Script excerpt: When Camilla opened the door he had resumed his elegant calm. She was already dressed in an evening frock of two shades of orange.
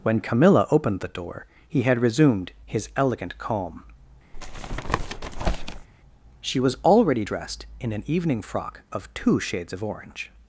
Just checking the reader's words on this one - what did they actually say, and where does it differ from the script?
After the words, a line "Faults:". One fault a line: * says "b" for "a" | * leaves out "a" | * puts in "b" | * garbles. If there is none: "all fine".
When Camilla opened the door he had resumed his elegant calm. She was already dressed in an evening frock of two shades of orange.
Faults:
all fine